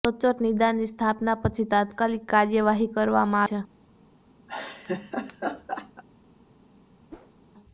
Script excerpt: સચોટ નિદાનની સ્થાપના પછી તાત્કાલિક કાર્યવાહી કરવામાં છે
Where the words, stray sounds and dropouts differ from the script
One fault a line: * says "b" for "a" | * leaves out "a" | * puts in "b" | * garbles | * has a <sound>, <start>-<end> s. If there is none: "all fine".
* has a laugh, 4.5-6.0 s
* has a whoosh, 7.1-7.3 s